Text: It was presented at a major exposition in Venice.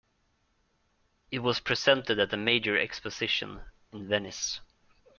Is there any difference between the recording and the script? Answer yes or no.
no